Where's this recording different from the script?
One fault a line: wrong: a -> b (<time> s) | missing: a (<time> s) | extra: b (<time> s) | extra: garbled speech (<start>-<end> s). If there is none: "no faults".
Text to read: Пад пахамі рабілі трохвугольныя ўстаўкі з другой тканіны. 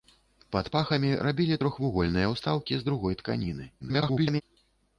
extra: garbled speech (3.8-4.4 s)